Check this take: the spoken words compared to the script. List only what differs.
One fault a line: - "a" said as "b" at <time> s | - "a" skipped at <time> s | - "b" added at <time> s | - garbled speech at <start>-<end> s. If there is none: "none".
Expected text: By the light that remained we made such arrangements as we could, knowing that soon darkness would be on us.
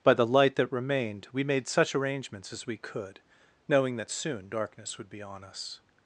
none